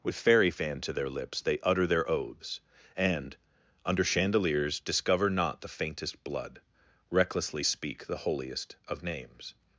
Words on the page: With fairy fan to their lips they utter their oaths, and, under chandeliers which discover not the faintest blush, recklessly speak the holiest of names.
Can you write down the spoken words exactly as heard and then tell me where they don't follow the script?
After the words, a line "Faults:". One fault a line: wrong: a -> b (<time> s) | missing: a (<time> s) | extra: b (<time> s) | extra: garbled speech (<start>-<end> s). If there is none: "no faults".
With fairy fan to their lips they utter their oaths, and, under chandeliers discover not the faintest blood, recklessly speak the holiest of names.
Faults:
missing: which (4.8 s)
wrong: blush -> blood (6.2 s)